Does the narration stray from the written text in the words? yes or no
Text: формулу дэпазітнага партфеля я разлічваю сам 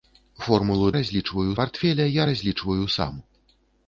yes